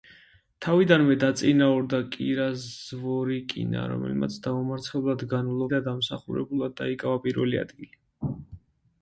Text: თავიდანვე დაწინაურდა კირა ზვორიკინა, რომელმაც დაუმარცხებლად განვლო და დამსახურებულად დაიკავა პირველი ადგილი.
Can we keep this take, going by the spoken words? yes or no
yes